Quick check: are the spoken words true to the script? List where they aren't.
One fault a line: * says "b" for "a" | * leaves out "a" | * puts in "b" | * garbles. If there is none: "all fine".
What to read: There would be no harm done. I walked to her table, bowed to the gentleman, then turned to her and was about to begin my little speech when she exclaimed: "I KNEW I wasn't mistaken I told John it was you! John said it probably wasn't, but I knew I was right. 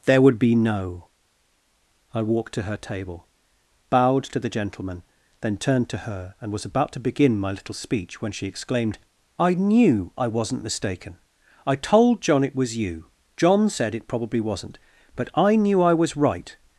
* leaves out "harm done"